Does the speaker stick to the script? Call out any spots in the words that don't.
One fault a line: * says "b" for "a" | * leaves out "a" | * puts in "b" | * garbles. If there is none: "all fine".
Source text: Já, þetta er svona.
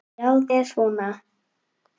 * leaves out "þetta"